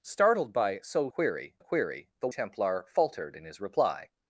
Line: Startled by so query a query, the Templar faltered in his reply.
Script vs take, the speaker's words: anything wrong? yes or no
no